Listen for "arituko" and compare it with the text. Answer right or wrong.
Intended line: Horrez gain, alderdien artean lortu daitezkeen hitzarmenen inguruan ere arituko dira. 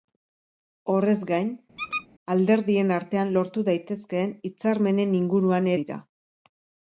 wrong